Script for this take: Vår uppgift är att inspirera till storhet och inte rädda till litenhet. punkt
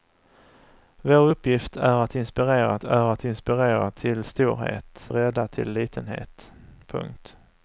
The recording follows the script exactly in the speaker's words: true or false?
false